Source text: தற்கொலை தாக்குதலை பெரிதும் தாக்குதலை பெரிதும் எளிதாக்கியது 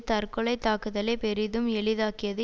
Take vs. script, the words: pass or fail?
fail